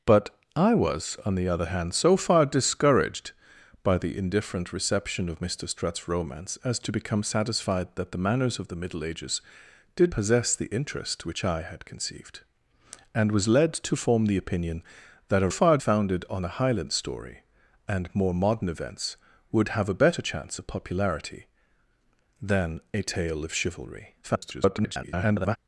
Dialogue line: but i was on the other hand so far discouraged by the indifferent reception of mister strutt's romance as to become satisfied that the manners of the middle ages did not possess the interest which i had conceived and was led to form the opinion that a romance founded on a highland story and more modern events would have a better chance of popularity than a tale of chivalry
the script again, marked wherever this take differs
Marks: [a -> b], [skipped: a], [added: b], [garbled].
but i was on the other hand so far discouraged by the indifferent reception of mister strutt's romance as to become satisfied that the manners of the middle ages did [skipped: not] possess the interest which i had conceived and was led to form the opinion that a [romance -> far] founded on a highland story and more modern events would have a better chance of popularity than a tale of chivalry [garbled]